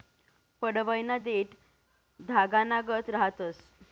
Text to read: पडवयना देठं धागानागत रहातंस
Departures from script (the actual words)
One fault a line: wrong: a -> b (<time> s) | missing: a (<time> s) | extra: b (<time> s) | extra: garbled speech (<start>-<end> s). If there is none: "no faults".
no faults